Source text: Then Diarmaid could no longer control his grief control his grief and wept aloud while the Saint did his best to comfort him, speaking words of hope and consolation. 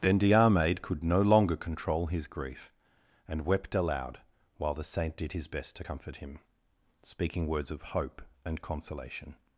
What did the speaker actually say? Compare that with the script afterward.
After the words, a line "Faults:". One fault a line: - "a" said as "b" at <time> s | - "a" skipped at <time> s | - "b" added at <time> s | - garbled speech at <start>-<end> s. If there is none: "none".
Then Diarmaid could no longer control his grief and wept aloud while the Saint did his best to comfort him, speaking words of hope and consolation.
Faults:
- "control his grief" skipped at 2.7 s